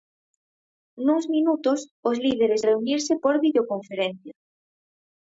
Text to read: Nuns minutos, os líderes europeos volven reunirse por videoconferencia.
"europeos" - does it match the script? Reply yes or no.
no